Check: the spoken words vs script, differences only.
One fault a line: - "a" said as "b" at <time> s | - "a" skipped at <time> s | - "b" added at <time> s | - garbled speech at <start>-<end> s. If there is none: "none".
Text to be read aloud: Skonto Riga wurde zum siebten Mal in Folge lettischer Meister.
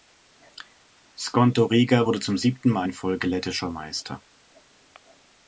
none